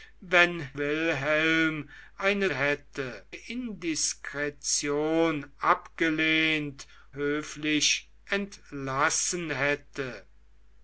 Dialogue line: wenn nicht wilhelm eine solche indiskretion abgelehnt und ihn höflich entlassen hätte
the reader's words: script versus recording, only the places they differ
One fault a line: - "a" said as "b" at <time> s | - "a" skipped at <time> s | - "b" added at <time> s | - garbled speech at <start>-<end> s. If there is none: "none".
- "nicht" skipped at 0.7 s
- "solche" said as "hätte" at 2.5 s
- "und ihn" skipped at 6.9 s